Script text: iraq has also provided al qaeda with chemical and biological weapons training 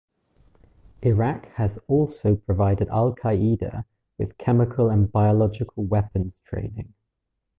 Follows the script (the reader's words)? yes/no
yes